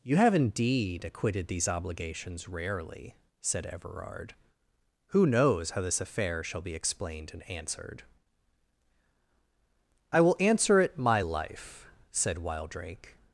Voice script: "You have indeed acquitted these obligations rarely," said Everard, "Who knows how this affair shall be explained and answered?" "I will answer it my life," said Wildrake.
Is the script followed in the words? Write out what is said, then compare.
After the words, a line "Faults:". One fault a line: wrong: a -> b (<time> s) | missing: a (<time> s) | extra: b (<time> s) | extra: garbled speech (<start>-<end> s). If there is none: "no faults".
"You have indeed acquitted these obligations rarely," said Everard, "Who knows how this affair shall be explained and answered?" "I will answer it my life," said Wildrake.
Faults:
no faults